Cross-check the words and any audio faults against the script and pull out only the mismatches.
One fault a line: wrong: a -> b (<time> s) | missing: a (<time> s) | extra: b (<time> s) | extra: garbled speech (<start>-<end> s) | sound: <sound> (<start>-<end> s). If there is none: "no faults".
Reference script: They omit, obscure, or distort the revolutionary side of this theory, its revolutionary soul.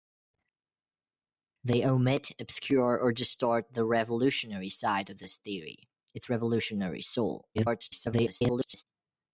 extra: garbled speech (7.5-8.8 s)